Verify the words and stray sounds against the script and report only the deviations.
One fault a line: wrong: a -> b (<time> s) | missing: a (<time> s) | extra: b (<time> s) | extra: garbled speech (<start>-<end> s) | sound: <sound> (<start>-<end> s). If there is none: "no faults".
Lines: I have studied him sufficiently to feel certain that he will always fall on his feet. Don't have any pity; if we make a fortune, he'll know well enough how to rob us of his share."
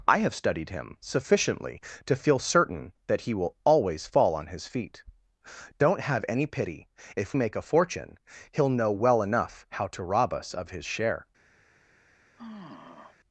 missing: we (7.3 s)
sound: sigh (12.4-13.2 s)